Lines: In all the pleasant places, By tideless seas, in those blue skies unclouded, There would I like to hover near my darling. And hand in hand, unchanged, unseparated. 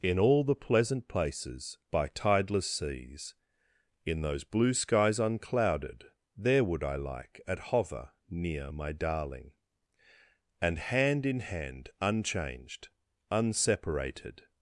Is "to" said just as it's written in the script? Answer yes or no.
no